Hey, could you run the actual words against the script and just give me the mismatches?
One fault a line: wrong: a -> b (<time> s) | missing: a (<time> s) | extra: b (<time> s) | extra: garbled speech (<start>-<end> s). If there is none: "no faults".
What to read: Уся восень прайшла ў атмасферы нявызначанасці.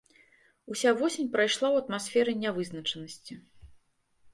no faults